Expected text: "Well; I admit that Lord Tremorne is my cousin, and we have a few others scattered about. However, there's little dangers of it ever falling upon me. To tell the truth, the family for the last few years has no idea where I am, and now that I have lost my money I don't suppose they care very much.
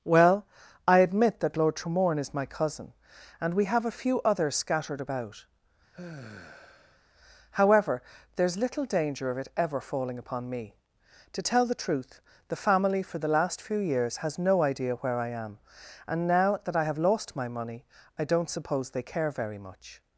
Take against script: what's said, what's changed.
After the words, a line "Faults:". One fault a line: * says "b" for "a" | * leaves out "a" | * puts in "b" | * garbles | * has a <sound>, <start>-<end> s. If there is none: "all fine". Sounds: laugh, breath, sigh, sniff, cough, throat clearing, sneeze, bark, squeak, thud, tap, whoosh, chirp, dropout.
"Well; I admit that Lord Tremorne is my cousin, and we have a few others scattered about. However, there's little danger of it ever falling upon me. To tell the truth, the family for the last few years has no idea where I am, and now that I have lost my money I don't suppose they care very much.
Faults:
* has a sigh, 5.9-7.0 s
* says "danger" for "dangers"